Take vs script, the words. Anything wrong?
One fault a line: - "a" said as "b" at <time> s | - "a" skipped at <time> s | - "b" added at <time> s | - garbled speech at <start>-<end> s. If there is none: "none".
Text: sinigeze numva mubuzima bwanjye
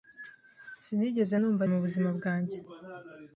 none